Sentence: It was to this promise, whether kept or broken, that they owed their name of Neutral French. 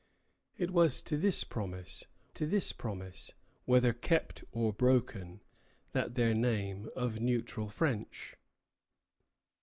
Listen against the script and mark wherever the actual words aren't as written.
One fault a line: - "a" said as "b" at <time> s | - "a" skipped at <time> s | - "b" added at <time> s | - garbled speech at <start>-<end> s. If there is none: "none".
- "to this promise" added at 2.3 s
- "they owed" skipped at 6.1 s